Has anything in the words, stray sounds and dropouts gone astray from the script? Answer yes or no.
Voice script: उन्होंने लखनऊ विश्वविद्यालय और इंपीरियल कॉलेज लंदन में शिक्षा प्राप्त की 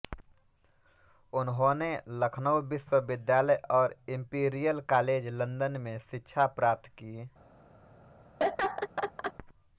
yes